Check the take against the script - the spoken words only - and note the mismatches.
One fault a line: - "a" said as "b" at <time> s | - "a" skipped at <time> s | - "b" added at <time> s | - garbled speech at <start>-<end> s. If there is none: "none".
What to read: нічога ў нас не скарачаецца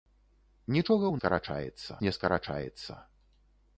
- "нас" said as "скарачаецца" at 1.2 s